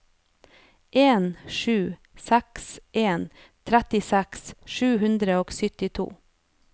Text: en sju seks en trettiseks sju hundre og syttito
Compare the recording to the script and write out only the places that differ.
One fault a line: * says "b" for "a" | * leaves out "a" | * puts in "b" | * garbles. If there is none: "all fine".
all fine